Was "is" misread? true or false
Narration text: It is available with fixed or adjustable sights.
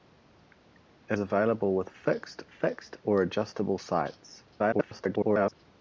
true